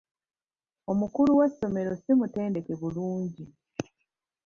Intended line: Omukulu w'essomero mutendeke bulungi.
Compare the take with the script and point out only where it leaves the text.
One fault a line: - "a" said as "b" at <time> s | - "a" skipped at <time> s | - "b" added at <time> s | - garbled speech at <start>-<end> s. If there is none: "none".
- "si" added at 2.0 s